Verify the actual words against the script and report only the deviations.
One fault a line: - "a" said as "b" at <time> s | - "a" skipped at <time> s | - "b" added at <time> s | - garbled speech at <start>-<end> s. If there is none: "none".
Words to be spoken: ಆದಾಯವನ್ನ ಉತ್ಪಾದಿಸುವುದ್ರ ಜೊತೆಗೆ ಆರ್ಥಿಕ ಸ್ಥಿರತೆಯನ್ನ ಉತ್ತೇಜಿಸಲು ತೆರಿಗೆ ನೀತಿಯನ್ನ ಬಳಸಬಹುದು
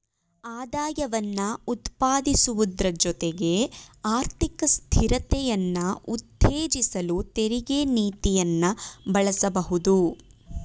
none